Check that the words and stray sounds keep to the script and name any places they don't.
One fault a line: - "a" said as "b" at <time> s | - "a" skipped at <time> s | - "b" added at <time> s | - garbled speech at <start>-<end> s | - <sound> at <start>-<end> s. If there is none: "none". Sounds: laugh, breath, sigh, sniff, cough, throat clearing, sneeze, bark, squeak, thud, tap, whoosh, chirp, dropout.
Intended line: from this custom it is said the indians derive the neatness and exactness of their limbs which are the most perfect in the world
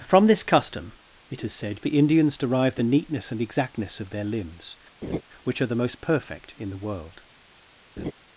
- laugh at 5.0-5.2 s
- laugh at 8.0-8.1 s